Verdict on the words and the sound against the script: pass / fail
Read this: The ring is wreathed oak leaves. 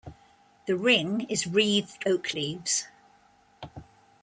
pass